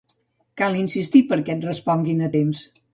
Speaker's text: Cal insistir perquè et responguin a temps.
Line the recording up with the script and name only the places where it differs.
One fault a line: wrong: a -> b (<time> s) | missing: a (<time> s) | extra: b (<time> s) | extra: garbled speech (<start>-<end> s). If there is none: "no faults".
no faults